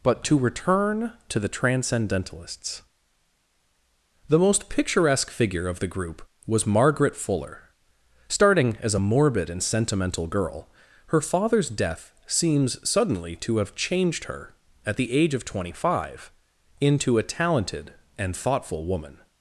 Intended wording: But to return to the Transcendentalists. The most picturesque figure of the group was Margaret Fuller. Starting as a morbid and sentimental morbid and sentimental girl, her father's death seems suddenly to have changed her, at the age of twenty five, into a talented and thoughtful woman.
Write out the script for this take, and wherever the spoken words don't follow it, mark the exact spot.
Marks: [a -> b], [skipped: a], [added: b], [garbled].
But to return to the Transcendentalists. The most picturesque figure of the group was Margaret Fuller. Starting as a morbid and sentimental [skipped: morbid and sentimental] girl, her father's death seems suddenly to have changed her, at the age of twenty five, into a talented and thoughtful woman.